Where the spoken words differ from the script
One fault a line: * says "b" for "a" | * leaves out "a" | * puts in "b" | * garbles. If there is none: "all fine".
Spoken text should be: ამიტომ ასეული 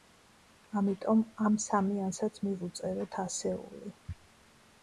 * puts in "ამ სამიანსაც მივუწეროთ"